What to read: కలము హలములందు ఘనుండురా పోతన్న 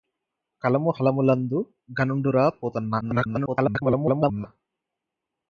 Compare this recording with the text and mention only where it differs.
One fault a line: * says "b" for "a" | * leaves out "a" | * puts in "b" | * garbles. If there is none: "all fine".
* garbles